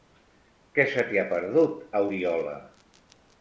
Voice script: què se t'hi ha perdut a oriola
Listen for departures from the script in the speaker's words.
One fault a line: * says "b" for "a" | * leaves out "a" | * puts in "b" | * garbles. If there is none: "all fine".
all fine